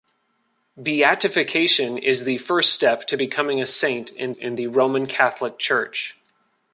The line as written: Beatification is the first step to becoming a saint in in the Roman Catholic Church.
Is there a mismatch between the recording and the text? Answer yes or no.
no